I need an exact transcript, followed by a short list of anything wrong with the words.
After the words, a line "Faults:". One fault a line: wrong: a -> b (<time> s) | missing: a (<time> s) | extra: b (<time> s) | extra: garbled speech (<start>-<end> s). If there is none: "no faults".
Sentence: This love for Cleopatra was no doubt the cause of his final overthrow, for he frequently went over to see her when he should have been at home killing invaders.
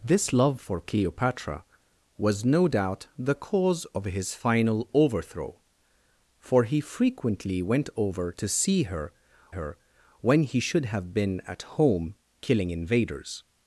This love for Cleopatra was no doubt the cause of his final overthrow, for he frequently went over to see her her when he should have been at home killing invaders.
Faults:
extra: her (9.5 s)